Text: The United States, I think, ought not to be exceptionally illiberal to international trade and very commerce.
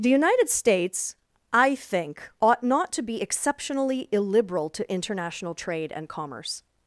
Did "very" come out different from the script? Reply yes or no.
yes